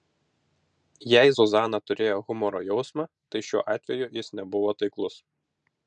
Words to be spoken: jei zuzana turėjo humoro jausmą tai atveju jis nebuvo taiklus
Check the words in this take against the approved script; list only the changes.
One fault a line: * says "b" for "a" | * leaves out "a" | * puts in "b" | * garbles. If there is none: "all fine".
* puts in "šiuo"